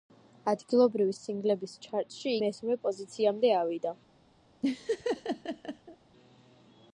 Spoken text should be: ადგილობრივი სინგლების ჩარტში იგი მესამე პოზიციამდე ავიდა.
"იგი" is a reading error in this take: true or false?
true